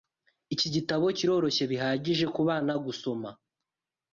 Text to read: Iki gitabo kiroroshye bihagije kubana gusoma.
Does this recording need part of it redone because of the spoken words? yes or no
no